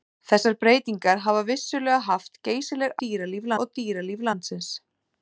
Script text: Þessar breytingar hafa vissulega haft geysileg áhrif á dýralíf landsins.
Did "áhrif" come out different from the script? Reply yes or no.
yes